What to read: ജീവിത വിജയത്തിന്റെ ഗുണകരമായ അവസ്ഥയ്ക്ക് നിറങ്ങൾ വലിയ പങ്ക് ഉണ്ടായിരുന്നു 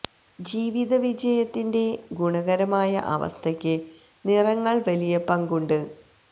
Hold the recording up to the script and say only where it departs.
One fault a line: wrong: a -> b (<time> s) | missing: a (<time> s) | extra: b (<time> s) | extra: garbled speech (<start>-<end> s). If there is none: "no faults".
wrong: ഉണ്ടായിരുന്നു -> ഉണ്ട് (5.6 s)